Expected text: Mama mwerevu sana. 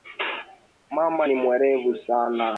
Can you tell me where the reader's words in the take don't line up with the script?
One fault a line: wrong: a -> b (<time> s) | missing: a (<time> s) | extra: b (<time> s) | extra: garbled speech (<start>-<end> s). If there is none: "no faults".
extra: ni (1.2 s)